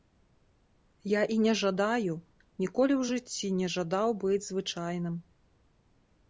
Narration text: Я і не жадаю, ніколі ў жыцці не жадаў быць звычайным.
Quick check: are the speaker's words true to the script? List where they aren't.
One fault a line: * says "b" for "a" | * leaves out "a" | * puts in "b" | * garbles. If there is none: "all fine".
all fine